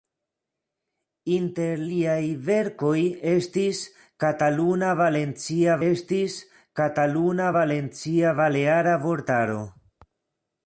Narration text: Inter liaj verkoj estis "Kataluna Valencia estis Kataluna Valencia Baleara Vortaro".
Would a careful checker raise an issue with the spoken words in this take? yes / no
no